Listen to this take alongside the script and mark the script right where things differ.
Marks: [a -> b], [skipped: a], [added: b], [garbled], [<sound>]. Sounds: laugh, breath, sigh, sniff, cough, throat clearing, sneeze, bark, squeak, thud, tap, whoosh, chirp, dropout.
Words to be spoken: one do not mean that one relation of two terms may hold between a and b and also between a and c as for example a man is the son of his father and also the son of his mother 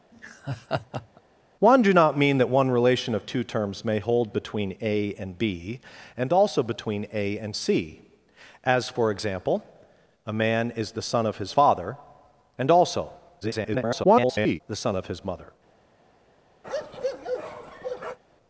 [laugh] one do not mean that one relation of two terms may hold between a and b and also between a and c as for example a man is the son of his father and also [garbled] the son of his mother [bark]